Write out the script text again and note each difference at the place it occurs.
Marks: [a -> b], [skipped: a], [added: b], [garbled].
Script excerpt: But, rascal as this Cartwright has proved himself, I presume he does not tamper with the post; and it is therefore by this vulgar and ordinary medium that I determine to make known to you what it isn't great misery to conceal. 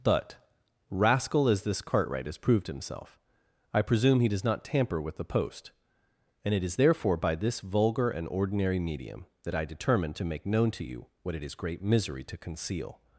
But, rascal as this Cartwright has proved himself, I presume he does not tamper with the post; and it is therefore by this vulgar and ordinary medium that I determine to make known to you what it [isn't -> is] great misery to conceal.